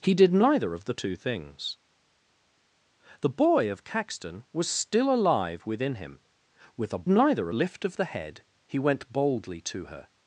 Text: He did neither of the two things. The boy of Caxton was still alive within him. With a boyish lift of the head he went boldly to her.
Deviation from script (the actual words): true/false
true